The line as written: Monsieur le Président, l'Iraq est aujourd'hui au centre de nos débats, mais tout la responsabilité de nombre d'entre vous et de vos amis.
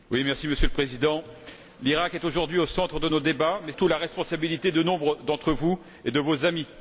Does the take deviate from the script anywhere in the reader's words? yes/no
no